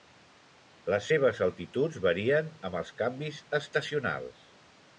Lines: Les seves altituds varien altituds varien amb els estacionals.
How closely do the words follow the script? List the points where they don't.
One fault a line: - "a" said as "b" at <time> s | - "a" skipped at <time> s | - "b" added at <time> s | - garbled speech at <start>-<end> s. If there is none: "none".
- "altituds varien" skipped at 2.5 s
- "canvis" added at 3.0 s